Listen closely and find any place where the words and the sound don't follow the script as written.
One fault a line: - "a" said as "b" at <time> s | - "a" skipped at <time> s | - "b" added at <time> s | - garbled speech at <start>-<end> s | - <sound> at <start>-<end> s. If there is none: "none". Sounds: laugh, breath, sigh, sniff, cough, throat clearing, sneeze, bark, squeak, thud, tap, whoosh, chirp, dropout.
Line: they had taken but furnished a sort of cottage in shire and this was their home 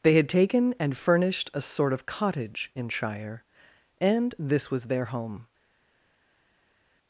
- "but" said as "and" at 0.8 s